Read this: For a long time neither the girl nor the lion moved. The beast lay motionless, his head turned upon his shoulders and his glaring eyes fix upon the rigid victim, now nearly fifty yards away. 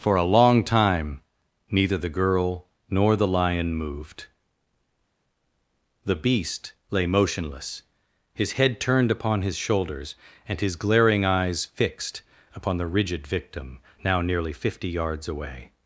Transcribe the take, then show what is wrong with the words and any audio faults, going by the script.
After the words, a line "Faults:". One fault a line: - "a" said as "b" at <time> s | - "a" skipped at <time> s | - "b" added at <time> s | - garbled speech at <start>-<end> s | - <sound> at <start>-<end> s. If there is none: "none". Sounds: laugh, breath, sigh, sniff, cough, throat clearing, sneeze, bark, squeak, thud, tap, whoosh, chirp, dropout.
For a long time neither the girl nor the lion moved. The beast lay motionless, his head turned upon his shoulders and his glaring eyes fixed upon the rigid victim, now nearly fifty yards away.
Faults:
- "fix" said as "fixed" at 11.7 s